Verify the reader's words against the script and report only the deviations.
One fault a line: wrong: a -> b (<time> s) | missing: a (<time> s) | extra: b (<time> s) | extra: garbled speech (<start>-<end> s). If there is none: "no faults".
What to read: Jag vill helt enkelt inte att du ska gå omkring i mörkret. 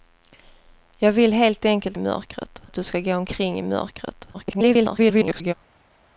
wrong: inte -> mörkret (2.0 s)
extra: garbled speech (4.3-5.5 s)